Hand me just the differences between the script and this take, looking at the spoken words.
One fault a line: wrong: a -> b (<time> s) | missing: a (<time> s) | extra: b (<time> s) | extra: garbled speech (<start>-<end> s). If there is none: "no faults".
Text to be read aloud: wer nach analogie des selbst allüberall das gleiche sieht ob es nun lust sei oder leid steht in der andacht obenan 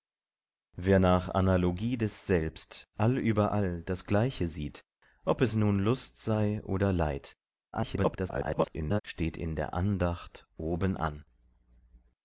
extra: garbled speech (7.7-9.0 s)